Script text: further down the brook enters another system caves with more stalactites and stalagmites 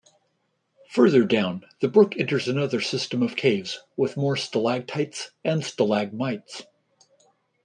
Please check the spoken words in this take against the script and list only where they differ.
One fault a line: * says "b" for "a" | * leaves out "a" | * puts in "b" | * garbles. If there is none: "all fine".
* puts in "of"